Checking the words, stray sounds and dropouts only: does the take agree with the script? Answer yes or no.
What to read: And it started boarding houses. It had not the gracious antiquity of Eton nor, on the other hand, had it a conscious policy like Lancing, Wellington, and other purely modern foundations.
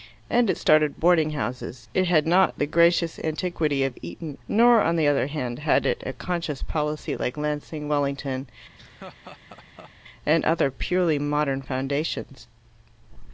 no